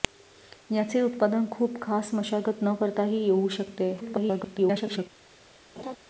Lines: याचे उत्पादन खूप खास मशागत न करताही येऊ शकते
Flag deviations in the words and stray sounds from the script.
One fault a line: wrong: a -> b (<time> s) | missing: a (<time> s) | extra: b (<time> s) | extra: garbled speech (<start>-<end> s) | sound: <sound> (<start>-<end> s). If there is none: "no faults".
extra: garbled speech (4.0-5.1 s)
sound: laugh (5.8-6.0 s)